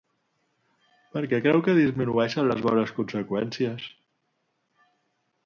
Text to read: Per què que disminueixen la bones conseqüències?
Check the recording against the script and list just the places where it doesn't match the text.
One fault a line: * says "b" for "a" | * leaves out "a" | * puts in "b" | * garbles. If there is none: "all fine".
* puts in "creu"
* says "les" for "la"